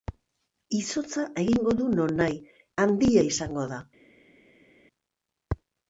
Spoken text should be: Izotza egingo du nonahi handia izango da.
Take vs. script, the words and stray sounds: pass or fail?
pass